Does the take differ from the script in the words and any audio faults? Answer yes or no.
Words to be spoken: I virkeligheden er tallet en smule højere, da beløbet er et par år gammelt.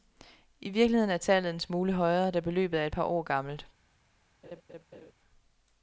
yes